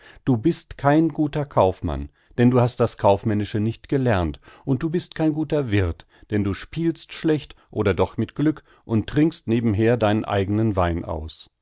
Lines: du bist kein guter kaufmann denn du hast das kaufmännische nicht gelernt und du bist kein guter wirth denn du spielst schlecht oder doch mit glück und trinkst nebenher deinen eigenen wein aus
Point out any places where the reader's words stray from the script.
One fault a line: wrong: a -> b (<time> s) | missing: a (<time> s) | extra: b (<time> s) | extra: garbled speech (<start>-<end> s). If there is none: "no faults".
no faults